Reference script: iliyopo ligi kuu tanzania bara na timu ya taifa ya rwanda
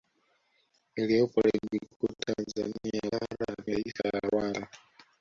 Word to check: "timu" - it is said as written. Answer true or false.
false